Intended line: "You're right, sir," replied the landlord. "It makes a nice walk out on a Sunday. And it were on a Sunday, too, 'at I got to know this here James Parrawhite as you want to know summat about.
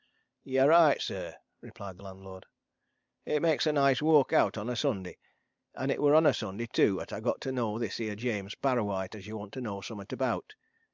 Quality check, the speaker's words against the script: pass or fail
pass